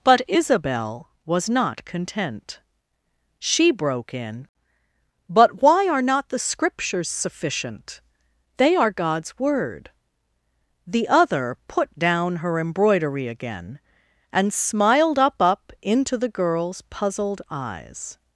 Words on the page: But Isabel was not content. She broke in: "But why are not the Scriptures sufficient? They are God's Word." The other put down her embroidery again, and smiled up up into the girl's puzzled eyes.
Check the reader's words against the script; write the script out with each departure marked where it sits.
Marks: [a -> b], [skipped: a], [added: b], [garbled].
But Isabel was not content. She broke in: "But why are not the Scriptures sufficient? They are God's Word." The other put down her embroidery again, and smiled up up into the girl's puzzled eyes.